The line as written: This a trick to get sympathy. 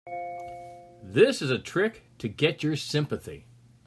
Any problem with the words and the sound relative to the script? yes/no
yes